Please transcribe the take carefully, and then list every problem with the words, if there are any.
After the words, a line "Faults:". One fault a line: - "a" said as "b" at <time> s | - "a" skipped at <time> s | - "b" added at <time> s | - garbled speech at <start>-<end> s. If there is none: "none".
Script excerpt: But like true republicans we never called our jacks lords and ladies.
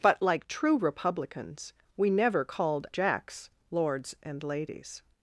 But like true republicans we never called jacks lords and ladies.
Faults:
- "our" skipped at 2.9 s